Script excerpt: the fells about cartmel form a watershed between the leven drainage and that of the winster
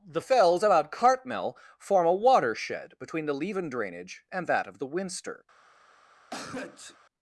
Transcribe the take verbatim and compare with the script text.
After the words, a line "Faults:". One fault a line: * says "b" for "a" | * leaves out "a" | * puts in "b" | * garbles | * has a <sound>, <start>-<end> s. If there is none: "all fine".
the fells about cartmel form a watershed between the leven drainage and that of the winster
Faults:
* has a sneeze, 6.3-7.0 s